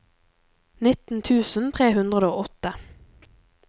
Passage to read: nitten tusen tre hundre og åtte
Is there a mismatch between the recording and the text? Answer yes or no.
no